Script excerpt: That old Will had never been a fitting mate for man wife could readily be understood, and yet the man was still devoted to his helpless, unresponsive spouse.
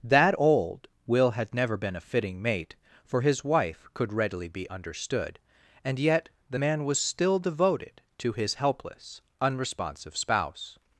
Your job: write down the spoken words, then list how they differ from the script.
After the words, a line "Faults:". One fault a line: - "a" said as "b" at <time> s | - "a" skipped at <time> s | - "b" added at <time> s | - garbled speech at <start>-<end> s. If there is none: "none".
That old Will had never been a fitting mate for his wife could readily be understood, and yet the man was still devoted to his helpless, unresponsive spouse.
Faults:
- "man" said as "his" at 3.2 s